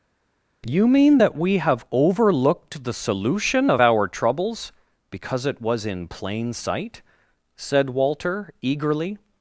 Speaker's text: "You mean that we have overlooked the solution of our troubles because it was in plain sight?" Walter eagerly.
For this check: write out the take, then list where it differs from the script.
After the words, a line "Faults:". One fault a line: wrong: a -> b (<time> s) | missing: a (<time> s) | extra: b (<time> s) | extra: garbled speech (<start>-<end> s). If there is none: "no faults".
"You mean that we have overlooked the solution of our troubles because it was in plain sight?" said Walter eagerly.
Faults:
extra: said (7.6 s)